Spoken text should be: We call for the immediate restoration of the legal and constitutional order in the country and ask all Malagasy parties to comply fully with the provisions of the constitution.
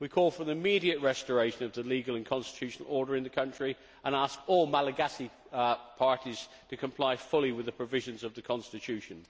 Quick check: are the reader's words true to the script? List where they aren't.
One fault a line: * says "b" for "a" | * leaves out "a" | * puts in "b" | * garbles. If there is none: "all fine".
all fine